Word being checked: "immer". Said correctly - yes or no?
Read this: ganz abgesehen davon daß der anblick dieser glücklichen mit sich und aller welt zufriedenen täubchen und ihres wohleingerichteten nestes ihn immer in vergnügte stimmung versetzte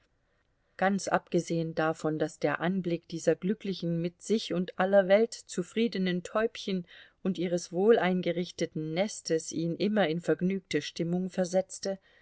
yes